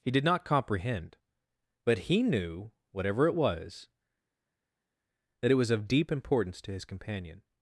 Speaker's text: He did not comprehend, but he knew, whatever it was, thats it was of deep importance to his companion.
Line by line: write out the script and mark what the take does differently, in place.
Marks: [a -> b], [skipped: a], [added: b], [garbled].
He did not comprehend, but he knew, whatever it was, [thats -> that] it was of deep importance to his companion.